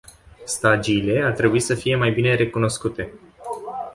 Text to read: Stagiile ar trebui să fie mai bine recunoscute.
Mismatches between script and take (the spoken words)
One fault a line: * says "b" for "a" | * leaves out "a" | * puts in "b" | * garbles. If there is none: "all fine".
all fine